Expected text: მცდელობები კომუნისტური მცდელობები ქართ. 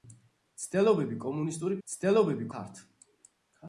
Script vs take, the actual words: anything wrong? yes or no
no